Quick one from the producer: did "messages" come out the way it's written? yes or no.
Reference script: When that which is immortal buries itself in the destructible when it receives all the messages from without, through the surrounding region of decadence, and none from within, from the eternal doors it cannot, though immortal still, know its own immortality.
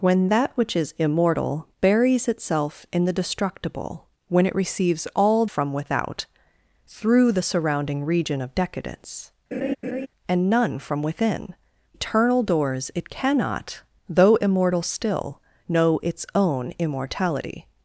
no